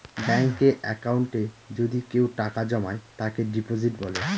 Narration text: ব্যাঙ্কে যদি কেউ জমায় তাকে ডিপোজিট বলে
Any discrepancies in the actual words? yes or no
yes